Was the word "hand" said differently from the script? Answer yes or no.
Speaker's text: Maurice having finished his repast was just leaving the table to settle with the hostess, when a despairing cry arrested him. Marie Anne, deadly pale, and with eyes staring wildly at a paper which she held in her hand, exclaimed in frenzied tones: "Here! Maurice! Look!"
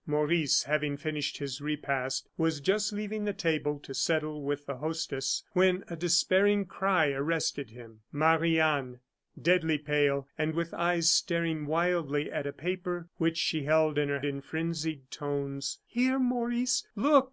yes